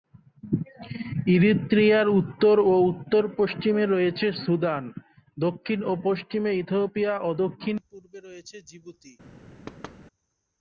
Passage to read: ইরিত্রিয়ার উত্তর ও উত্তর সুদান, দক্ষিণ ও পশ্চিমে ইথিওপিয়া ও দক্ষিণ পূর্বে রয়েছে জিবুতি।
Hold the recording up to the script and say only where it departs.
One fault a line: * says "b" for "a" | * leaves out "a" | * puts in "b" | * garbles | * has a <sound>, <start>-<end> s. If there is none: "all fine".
* puts in "পশ্চিমে রয়েছে"
* has a thud, 9.7-10.0 s